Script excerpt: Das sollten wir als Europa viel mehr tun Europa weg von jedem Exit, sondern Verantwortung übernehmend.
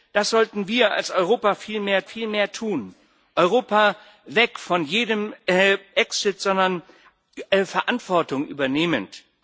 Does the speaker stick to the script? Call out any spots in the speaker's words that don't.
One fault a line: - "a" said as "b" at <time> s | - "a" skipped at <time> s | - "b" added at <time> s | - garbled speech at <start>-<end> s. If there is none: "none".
- "viel mehr" added at 2.0 s